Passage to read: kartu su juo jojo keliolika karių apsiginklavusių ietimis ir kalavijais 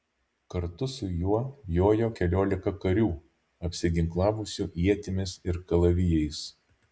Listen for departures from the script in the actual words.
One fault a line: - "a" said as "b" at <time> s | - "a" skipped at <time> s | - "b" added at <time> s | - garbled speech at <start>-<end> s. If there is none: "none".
none